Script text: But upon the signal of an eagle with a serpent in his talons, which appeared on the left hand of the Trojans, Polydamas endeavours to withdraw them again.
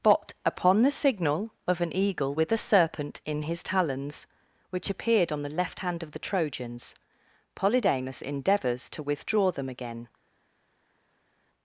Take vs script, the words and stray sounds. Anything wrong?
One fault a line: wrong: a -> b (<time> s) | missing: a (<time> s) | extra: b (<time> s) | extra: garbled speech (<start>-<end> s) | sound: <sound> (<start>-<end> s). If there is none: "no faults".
no faults